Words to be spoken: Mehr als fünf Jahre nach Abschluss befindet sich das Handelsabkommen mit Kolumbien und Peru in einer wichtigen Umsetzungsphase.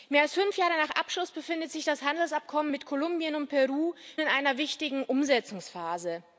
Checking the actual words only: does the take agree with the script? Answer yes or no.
yes